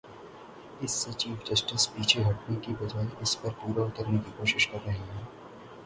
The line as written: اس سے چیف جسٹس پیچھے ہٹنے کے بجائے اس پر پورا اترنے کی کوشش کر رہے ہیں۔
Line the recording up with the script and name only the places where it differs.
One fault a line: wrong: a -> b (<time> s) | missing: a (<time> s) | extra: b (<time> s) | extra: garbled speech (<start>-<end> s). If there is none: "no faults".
wrong: کے -> کی (2.6 s)